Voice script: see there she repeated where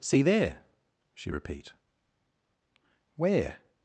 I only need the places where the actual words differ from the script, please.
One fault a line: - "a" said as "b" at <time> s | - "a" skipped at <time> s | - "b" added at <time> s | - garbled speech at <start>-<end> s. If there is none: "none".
- "repeated" said as "repeat" at 1.3 s